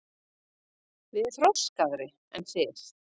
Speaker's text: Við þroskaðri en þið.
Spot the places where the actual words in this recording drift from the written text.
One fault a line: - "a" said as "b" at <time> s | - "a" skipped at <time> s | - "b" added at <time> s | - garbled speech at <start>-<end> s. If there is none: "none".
none